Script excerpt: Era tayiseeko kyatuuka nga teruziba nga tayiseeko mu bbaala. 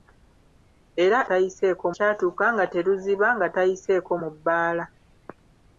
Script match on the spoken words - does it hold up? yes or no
yes